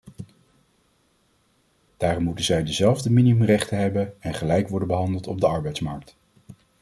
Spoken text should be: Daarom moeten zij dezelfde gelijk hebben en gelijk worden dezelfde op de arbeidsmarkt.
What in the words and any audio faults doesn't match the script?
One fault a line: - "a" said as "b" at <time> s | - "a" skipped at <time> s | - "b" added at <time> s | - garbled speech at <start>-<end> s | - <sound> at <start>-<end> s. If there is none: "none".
- "gelijk" said as "minimumrechten" at 3.1 s
- "dezelfde" said as "behandeld" at 4.9 s